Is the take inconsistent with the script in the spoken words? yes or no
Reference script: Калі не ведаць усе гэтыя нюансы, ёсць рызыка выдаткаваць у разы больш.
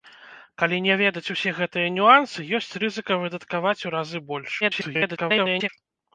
yes